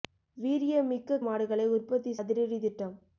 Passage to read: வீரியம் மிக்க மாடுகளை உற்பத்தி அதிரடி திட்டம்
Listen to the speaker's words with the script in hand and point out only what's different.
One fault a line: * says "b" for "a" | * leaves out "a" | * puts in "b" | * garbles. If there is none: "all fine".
all fine